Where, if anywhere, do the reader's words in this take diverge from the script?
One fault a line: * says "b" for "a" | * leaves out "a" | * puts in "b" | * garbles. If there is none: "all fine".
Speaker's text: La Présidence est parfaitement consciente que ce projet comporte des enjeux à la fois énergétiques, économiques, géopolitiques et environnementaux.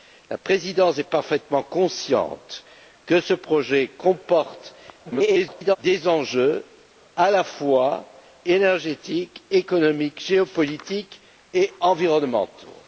* garbles